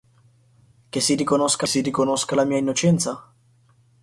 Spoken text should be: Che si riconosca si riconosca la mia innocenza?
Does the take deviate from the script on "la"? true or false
false